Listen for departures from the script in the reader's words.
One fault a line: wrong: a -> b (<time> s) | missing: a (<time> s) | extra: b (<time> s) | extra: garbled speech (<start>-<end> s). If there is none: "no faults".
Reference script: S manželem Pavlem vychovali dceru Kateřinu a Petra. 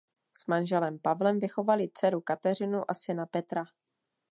extra: syna (2.9 s)